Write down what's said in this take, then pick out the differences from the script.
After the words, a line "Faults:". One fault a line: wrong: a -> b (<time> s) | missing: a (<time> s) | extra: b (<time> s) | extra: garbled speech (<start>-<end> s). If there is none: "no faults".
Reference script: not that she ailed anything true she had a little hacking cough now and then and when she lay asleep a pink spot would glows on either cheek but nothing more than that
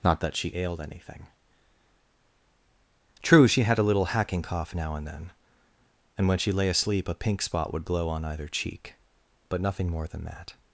not that she ailed anything true she had a little hacking cough now and then and when she lay asleep a pink spot would glow on either cheek but nothing more than that
Faults:
wrong: glows -> glow (7.8 s)